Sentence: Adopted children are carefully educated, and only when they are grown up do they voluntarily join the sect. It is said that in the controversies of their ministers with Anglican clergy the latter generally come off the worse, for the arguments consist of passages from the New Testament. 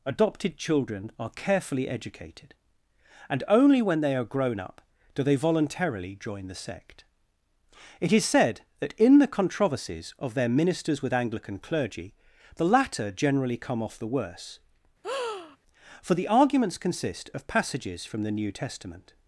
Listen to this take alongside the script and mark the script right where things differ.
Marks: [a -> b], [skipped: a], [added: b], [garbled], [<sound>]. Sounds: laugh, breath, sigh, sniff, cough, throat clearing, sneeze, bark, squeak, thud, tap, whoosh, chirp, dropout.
Adopted children are carefully educated, and only when they are grown up do they voluntarily join the sect. It is said that in the controversies of their ministers with Anglican clergy the latter generally come off the worse, [breath] for the arguments consist of passages from the New Testament.